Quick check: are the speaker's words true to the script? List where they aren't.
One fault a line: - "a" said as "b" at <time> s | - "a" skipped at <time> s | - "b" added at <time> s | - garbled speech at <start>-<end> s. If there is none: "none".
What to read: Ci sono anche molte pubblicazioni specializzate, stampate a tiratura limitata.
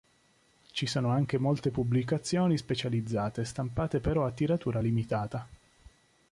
- "però" added at 4.0 s